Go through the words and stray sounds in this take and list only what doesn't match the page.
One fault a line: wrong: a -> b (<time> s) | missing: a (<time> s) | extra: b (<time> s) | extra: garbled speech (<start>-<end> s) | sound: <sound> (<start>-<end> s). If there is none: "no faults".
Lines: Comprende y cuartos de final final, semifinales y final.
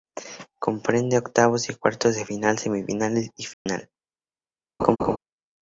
extra: octavos (1.2 s)
missing: final (2.6 s)
sound: dropout (3.5-3.7 s)
sound: laugh (4.8-5.2 s)